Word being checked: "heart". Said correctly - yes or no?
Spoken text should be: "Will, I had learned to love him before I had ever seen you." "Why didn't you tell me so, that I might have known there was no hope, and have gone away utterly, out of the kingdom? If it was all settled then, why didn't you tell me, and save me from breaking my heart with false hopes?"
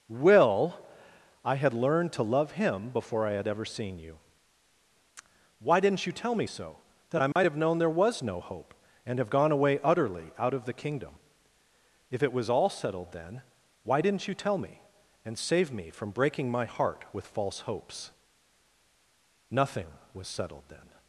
yes